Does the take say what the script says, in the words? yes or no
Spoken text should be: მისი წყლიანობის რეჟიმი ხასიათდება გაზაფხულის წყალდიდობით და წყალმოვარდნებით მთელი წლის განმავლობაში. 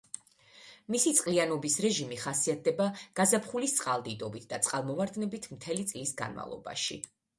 yes